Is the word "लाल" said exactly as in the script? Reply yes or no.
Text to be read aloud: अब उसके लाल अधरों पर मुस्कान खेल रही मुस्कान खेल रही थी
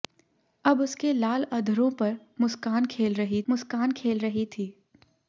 yes